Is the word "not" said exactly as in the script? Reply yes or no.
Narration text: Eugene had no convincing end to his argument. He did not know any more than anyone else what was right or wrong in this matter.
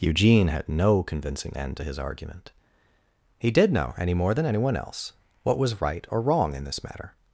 no